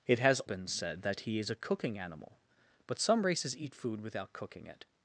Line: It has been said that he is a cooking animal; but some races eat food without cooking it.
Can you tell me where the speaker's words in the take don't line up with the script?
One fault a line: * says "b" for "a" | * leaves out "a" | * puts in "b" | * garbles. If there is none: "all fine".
all fine